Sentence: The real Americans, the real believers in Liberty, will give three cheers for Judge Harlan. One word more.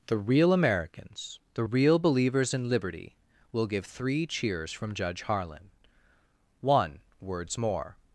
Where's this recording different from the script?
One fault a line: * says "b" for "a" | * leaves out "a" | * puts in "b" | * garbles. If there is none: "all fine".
* says "from" for "for"
* says "words" for "word"